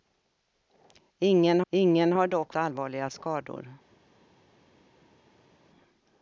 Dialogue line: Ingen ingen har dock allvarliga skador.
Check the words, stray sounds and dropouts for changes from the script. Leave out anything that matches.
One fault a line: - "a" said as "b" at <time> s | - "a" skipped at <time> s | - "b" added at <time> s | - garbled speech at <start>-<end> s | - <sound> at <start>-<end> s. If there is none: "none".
none